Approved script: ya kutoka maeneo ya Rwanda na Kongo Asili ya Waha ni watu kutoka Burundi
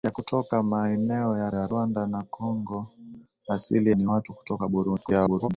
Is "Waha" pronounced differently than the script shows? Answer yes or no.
yes